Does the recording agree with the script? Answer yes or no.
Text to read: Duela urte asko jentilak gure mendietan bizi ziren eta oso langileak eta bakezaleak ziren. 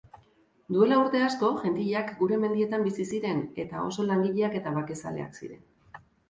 yes